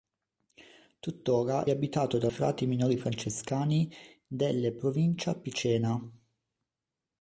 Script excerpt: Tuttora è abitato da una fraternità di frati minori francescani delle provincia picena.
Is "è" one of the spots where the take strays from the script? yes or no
yes